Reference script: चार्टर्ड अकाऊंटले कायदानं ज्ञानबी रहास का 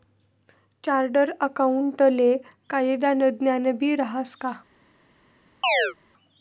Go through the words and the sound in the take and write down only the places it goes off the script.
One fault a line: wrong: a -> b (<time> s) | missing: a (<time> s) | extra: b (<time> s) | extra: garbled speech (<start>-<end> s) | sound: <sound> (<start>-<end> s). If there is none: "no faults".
sound: chirp (5.6-5.9 s)